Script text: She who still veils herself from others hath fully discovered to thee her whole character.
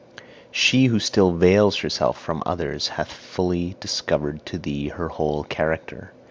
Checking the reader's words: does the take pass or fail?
pass